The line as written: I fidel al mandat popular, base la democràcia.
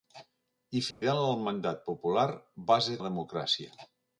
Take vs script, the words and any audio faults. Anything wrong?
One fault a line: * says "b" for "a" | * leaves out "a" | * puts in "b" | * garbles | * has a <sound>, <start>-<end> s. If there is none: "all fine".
* has a dropout, 0.9-1.0 s